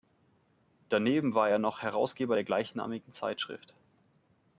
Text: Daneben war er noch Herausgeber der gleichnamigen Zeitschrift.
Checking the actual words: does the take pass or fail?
pass